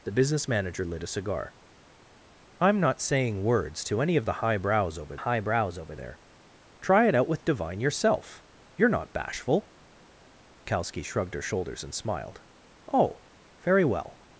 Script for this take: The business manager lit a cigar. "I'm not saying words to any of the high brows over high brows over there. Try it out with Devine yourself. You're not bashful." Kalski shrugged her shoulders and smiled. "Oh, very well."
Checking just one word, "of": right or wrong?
right